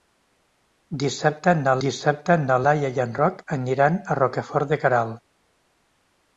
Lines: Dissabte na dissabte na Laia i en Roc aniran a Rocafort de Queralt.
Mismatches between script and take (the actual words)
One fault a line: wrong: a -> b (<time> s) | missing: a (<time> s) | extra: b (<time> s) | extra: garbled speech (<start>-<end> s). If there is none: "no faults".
no faults